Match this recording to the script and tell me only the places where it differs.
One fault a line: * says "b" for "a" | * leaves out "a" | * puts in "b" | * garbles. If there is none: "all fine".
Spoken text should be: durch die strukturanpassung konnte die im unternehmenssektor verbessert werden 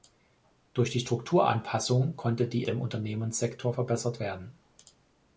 all fine